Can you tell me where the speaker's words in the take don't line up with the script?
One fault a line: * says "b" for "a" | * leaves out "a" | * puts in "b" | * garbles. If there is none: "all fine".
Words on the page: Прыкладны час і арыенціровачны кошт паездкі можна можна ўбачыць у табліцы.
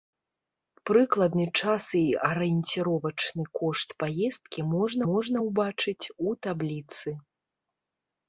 all fine